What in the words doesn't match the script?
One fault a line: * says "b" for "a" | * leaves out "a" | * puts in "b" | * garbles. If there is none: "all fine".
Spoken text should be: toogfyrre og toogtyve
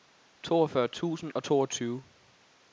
* puts in "tusind"